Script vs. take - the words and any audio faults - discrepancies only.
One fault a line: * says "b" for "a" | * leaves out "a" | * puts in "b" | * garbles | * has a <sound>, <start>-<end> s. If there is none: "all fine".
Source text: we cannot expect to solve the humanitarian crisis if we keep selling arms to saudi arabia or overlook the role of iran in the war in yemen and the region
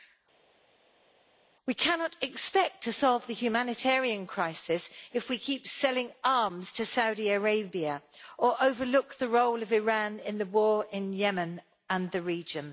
all fine